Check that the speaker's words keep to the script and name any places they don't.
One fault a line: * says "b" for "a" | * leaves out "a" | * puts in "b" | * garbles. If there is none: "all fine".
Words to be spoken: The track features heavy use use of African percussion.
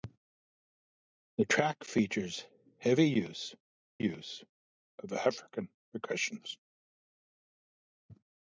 all fine